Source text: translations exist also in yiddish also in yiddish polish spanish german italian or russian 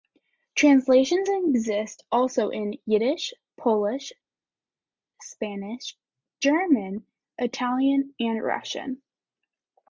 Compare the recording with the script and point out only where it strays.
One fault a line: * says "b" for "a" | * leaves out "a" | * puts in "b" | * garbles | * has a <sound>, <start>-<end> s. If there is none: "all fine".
* leaves out "also in yiddish"
* says "and" for "or"